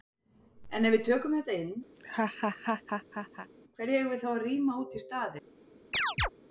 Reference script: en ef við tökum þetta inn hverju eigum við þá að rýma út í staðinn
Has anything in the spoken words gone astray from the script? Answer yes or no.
no